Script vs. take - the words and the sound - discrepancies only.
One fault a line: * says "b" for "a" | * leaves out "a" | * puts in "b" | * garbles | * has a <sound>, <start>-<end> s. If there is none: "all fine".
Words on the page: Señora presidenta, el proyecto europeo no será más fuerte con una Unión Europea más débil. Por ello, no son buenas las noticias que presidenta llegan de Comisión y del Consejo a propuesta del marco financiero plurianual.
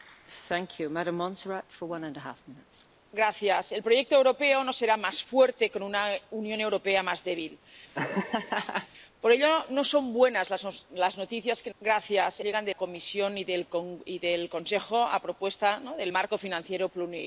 * has a laugh, 7.9-8.9 s